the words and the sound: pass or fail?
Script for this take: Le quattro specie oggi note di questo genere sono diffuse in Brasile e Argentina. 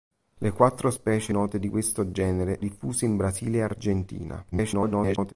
fail